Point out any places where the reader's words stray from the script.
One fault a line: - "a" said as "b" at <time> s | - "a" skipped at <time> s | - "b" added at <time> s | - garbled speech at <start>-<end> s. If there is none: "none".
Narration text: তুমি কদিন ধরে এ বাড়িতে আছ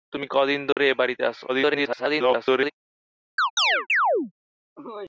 - garbled speech at 1.5-2.7 s